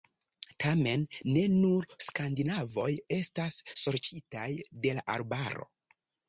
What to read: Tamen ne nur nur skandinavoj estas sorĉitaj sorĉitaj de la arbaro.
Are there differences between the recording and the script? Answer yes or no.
yes